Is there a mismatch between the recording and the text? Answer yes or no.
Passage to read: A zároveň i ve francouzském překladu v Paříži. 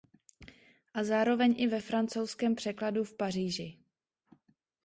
no